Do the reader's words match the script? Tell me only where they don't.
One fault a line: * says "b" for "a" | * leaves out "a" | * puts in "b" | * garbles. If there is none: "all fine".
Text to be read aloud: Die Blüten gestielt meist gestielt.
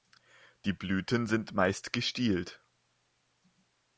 * says "sind" for "gestielt"